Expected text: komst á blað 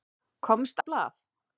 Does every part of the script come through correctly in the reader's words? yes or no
yes